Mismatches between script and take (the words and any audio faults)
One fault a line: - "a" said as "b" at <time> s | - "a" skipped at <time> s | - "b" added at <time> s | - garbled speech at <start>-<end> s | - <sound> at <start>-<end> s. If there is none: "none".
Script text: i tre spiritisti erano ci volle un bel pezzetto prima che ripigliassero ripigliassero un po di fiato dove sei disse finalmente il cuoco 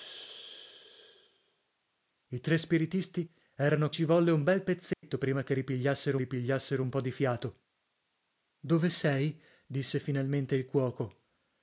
- dropout at 4.9-5.0 s